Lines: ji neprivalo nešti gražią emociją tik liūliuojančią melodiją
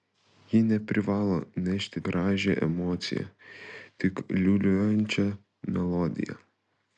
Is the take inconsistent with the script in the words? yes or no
no